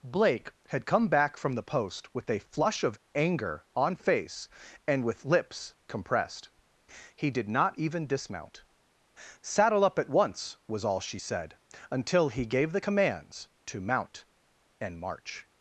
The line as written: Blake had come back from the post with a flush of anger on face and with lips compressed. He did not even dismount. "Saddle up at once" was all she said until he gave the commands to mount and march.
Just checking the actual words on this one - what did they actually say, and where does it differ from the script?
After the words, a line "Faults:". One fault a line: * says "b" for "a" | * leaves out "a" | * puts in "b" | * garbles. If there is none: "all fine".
Blake had come back from the post with a flush of anger on face and with lips compressed. He did not even dismount. "Saddle up at once" was all she said until he gave the commands to mount and march.
Faults:
all fine